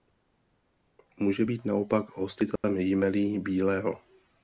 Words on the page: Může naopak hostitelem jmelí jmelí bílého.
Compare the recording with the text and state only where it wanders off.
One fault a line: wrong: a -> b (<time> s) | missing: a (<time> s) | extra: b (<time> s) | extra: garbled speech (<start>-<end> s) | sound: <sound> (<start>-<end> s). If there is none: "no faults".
extra: být (1.4 s)
sound: dropout (2.6-2.6 s)
missing: jmelí (3.4 s)